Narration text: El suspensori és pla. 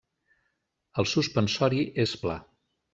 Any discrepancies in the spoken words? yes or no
no